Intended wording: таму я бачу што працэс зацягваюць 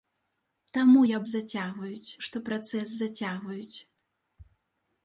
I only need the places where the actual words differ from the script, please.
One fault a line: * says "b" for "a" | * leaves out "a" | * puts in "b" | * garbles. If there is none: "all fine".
* says "зацягваюць" for "бачу"